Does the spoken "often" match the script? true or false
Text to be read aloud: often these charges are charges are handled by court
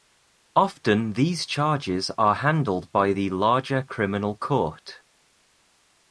true